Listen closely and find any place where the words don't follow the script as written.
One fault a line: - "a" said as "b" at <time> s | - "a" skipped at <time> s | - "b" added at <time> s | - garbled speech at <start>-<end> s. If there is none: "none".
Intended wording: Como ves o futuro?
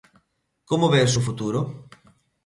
none